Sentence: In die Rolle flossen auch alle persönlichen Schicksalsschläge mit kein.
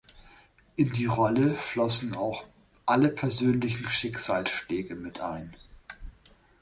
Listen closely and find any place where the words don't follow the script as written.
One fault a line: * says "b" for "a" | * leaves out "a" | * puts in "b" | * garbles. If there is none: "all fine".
* says "ein" for "kein"